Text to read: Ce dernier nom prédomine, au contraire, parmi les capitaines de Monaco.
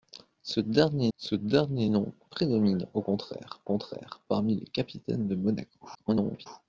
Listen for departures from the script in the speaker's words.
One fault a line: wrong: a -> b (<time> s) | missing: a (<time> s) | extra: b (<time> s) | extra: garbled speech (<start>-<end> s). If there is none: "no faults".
extra: ce dernier (1.2 s)
extra: contraire (3.6 s)
extra: garbled speech (5.9-6.5 s)